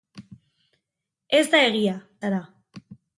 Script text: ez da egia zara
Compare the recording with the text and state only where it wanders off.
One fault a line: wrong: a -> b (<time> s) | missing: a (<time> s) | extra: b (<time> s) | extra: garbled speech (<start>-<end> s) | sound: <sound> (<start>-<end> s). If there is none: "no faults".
no faults